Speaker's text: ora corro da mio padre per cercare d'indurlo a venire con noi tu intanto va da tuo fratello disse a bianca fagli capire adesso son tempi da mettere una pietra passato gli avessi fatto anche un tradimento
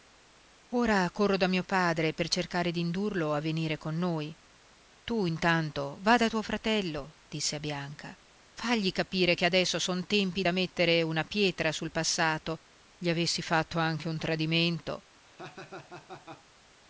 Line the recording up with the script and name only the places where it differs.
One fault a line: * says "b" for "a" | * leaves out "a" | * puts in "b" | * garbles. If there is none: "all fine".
* puts in "che"
* puts in "sul"